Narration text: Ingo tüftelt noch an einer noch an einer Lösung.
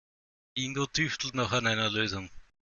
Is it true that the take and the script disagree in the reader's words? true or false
true